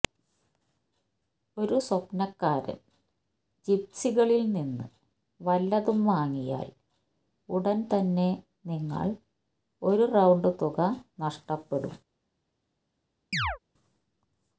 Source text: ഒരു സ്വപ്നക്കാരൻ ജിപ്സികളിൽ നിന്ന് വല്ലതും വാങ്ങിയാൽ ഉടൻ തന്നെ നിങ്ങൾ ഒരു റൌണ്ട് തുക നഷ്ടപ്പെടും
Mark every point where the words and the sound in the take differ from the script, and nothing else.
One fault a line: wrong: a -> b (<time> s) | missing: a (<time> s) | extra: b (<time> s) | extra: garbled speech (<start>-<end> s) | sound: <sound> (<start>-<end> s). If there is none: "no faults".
sound: chirp (13.3-13.6 s)